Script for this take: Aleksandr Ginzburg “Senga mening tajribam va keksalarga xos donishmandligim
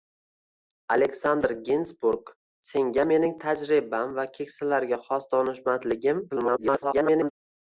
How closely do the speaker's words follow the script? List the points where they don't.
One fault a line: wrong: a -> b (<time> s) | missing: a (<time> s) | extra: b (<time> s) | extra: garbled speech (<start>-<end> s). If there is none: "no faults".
extra: garbled speech (6.3-7.3 s)